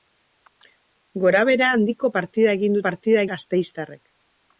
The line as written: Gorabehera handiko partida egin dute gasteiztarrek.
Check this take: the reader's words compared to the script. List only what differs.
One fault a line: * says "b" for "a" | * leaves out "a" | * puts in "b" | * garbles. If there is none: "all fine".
* says "partida" for "dute"